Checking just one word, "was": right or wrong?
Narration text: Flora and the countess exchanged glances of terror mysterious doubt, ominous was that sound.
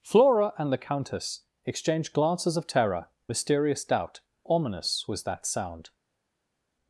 right